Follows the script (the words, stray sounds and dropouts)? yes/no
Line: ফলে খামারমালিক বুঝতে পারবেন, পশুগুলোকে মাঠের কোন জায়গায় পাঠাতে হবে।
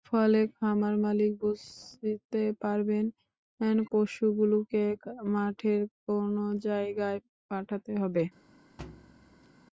no